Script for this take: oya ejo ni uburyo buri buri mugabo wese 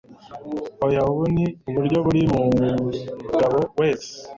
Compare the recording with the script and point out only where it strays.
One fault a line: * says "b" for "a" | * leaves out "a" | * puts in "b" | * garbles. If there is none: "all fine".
* says "ubu" for "ejo"
* leaves out "buri"